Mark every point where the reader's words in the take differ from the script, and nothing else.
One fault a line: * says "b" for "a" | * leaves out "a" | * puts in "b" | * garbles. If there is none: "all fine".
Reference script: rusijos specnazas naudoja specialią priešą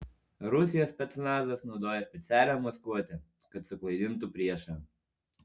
* puts in "maskuotę kad suklaidintų"